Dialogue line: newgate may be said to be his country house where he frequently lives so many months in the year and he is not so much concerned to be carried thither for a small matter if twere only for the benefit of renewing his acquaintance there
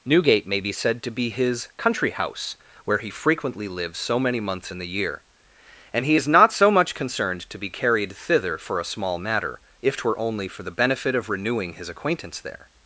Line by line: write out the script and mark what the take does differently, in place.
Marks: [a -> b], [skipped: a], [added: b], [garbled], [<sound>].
newgate may be said to be his country house where he frequently lives so many months in the year and he is not so much concerned to be carried thither for a small matter if twere only for the benefit of renewing his acquaintance there